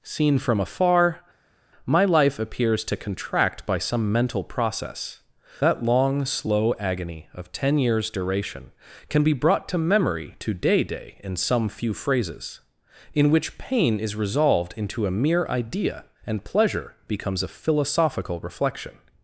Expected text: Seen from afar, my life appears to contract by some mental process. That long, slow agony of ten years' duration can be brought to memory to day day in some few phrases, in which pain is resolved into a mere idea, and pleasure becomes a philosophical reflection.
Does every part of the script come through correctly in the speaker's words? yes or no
yes